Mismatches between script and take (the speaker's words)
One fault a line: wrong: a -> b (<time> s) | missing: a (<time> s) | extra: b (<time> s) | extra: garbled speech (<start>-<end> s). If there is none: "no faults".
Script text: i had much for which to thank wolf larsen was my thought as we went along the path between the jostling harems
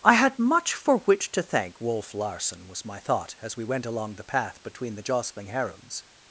no faults